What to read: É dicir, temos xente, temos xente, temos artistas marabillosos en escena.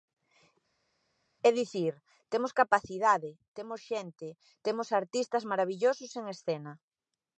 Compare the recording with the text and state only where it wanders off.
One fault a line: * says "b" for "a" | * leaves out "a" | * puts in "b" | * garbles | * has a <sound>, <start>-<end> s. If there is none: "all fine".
* says "capacidade" for "xente"